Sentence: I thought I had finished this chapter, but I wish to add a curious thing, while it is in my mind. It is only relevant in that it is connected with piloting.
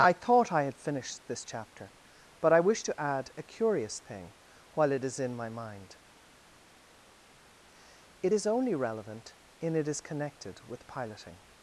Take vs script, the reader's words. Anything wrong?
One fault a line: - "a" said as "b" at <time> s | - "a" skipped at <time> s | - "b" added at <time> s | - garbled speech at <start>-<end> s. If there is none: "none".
- "that" skipped at 9.8 s